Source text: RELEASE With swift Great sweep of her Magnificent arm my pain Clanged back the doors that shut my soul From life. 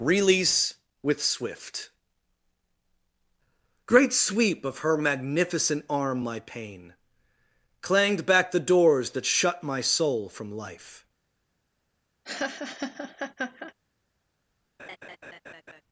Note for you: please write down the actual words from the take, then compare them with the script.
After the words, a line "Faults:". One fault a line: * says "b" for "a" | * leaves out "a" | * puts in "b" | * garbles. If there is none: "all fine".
RELEASE With swift Great sweep of her Magnificent arm my pain Clanged back the doors that shut my soul From life.
Faults:
all fine